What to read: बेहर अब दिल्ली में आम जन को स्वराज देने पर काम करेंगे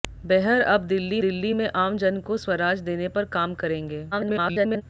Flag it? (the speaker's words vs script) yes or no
yes